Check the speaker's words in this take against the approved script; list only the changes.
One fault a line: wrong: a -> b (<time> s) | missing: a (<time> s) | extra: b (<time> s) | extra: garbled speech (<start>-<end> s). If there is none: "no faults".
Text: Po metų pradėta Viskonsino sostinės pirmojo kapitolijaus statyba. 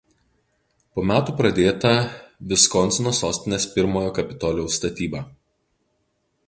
no faults